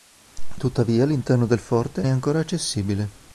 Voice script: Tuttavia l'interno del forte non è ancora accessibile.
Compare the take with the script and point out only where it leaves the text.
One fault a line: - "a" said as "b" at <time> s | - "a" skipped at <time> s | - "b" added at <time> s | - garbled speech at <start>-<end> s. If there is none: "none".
- "non" skipped at 2.0 s